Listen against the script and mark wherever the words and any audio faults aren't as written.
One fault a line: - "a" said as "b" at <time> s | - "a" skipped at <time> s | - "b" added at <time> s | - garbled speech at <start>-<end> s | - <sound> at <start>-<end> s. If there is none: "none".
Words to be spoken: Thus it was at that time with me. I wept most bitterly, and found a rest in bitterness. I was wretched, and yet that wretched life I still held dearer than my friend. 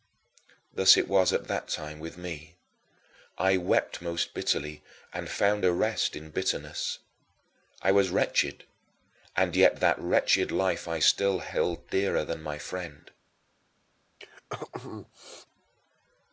- throat clearing at 14.2-15.5 s